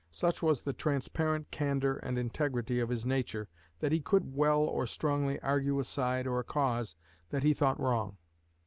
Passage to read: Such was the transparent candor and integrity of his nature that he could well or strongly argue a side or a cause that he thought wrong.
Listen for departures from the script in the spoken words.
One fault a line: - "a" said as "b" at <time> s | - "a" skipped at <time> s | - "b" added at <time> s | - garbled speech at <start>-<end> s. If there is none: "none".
none